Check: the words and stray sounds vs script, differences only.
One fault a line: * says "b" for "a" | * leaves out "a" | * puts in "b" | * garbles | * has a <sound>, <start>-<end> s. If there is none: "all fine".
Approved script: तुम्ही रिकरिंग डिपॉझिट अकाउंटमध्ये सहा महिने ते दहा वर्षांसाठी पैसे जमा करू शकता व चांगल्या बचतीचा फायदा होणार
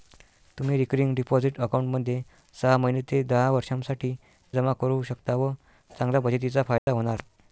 * leaves out "पैसे"
* has a dropout, 6.8-6.9 s